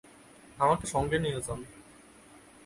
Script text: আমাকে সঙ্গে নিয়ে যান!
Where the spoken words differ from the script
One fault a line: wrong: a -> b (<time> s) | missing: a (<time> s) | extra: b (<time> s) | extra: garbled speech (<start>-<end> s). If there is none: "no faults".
no faults